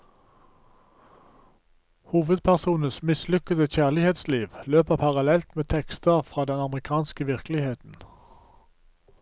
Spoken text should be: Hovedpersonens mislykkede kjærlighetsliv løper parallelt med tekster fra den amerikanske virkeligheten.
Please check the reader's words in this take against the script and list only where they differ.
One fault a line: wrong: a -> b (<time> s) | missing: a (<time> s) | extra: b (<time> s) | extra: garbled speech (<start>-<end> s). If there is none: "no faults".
no faults